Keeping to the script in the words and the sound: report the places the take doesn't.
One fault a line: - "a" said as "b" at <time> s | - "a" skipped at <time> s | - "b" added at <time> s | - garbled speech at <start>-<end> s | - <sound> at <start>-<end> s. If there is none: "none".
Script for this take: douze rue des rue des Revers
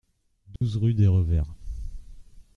- dropout at 0.6-0.6 s
- "rue des" skipped at 1.1 s